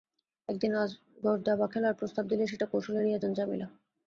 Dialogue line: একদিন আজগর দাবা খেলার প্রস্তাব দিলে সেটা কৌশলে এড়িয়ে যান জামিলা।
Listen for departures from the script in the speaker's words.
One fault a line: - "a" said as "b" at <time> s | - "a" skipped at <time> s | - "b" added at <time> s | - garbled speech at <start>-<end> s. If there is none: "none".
none